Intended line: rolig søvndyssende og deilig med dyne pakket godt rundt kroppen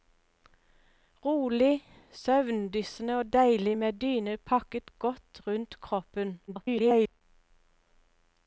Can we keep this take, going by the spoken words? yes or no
no